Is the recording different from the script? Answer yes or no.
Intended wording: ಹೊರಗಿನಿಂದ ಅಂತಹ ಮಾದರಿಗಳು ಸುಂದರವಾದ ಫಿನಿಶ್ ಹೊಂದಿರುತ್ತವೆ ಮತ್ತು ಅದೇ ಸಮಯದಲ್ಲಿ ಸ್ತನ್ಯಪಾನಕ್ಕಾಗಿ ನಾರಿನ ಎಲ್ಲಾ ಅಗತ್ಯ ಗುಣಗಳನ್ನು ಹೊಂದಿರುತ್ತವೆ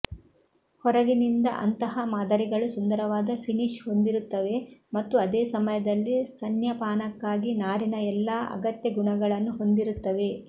no